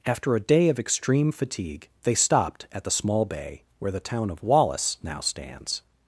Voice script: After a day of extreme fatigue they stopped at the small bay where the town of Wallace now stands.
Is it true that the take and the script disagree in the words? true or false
false